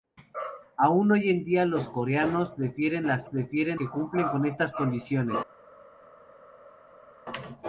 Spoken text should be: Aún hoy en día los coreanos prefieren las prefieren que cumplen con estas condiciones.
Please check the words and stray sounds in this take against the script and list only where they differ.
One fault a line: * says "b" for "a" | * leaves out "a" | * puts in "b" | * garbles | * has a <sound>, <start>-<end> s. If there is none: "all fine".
all fine